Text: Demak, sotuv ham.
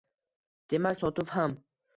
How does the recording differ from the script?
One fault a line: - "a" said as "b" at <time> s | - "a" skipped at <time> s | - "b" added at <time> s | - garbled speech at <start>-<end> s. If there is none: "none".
none